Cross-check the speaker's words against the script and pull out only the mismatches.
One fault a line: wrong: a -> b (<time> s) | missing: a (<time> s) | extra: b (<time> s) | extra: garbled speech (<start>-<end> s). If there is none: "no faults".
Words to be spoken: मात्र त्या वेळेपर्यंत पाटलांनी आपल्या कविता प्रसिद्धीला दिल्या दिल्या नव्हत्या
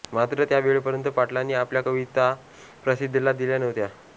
missing: दिल्या (3.6 s)